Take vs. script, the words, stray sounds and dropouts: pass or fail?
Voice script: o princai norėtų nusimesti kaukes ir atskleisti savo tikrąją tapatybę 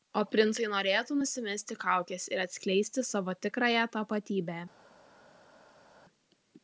pass